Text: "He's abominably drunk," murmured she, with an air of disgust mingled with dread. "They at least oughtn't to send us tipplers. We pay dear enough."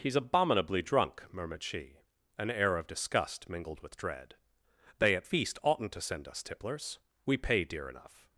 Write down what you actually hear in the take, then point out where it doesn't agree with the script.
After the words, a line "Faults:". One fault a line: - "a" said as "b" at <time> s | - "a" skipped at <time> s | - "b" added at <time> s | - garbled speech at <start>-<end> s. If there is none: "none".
"He's abominably drunk," murmured she, an air of disgust mingled with dread. "They at feast oughtn't to send us tipplers. We pay dear enough."
Faults:
- "with" skipped at 2.0 s
- "least" said as "feast" at 5.2 s